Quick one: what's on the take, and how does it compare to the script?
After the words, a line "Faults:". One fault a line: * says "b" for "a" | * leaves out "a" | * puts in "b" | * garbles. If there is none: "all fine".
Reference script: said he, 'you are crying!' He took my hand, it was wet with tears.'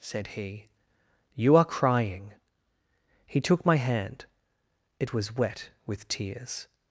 said he, 'you are crying!' He took my hand, it was wet with tears.'
Faults:
all fine